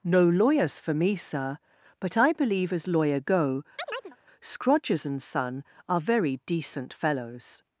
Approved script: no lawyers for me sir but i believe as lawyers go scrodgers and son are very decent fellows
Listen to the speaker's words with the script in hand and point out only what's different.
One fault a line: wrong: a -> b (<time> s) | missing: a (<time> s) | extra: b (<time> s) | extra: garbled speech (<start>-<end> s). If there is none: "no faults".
wrong: lawyers -> lawyer (2.9 s)